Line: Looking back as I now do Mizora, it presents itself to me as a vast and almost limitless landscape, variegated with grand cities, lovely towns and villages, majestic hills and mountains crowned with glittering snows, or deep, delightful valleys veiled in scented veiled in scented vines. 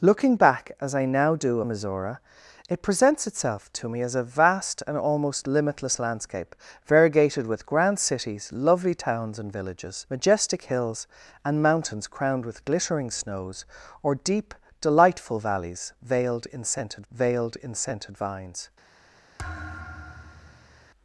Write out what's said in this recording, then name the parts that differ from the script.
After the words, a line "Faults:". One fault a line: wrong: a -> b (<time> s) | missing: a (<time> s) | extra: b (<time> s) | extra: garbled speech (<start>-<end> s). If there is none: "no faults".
Looking back as I now do Mizora, it presents itself to me as a vast and almost limitless landscape, variegated with grand cities, lovely towns and villages, majestic hills and mountains crowned with glittering snows, or deep, delightful valleys veiled in scented veiled in scented vines.
Faults:
no faults